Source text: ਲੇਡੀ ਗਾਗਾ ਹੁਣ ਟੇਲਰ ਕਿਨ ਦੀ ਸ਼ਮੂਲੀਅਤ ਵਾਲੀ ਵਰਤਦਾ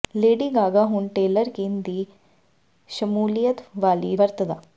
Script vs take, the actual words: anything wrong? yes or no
no